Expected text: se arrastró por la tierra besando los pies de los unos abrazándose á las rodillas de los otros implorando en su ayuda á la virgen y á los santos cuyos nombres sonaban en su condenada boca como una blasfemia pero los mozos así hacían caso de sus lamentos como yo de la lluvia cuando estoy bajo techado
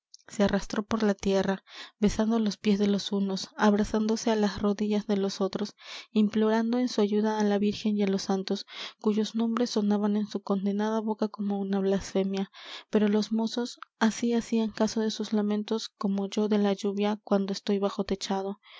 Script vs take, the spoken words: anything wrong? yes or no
no